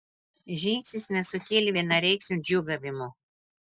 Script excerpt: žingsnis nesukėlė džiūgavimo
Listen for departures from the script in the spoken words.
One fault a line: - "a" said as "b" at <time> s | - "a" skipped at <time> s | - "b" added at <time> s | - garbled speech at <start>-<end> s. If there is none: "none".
- "vienareikšmio" added at 1.8 s